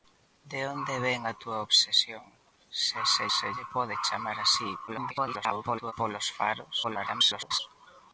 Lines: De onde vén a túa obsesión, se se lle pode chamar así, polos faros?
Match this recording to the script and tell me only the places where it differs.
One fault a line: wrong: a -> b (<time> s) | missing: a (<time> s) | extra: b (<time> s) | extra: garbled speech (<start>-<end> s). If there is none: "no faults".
extra: se (3.4 s)
extra: garbled speech (4.9-5.9 s)
extra: garbled speech (6.8-7.6 s)